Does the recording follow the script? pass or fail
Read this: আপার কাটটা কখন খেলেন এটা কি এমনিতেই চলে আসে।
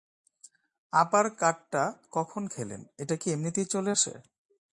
pass